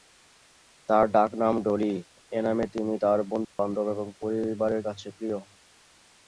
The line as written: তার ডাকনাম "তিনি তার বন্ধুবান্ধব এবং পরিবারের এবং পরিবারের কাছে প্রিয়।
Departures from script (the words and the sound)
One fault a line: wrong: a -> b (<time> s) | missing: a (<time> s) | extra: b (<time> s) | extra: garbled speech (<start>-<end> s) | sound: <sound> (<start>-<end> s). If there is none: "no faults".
extra: ডলি এ নামে (1.6 s)
sound: dropout (3.4-3.6 s)
missing: এবং পরিবারের (4.8 s)